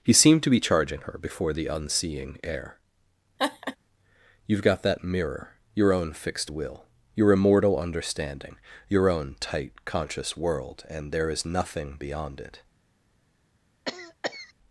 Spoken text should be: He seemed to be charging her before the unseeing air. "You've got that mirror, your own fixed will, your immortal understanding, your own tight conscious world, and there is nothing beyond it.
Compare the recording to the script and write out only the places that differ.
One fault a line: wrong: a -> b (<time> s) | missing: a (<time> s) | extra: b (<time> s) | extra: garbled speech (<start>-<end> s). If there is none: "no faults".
no faults